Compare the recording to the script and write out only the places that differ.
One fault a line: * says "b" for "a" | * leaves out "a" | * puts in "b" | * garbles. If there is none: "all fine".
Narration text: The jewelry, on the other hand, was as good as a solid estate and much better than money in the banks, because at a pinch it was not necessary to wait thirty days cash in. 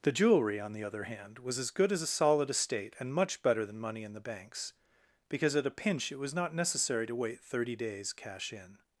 all fine